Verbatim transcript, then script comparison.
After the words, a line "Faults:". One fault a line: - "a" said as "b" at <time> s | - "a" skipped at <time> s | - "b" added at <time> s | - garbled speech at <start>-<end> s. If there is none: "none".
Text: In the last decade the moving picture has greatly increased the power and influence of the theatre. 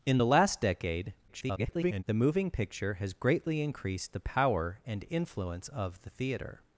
In the last decade [garbled] the moving picture has greatly increased the power and influence of the theatre.
Faults:
- garbled speech at 1.3-2.0 s